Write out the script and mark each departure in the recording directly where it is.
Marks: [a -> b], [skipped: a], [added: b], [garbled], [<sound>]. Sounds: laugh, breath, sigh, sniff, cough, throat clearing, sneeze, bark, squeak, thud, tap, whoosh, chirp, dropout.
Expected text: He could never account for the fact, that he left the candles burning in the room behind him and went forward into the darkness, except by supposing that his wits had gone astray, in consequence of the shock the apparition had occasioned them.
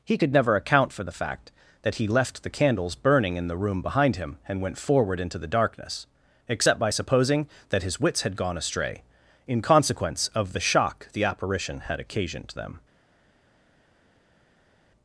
He could never account for the fact, that he left the candles burning in the room behind him and went forward into the darkness, except by supposing that his wits had gone astray, in consequence of the shock the apparition had occasioned them.